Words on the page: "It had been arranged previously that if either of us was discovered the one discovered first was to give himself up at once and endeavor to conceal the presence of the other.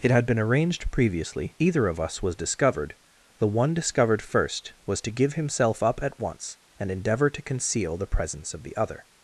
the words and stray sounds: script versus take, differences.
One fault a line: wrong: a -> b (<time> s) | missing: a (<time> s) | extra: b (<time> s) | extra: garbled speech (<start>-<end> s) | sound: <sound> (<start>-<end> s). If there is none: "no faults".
missing: that if (1.6 s)